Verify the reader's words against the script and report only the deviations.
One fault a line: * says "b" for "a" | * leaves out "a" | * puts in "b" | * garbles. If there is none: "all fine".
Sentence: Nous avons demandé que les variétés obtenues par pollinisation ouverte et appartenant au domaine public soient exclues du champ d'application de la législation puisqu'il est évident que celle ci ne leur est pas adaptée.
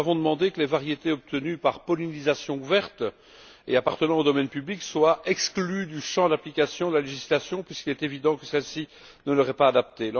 all fine